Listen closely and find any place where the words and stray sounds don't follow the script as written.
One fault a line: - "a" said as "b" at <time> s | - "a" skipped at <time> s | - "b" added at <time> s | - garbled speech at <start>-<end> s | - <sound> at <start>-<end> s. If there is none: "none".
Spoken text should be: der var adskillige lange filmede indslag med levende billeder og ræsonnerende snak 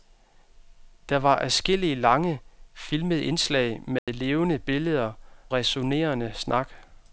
- dropout at 4.0-4.1 s
- "og" skipped at 5.1 s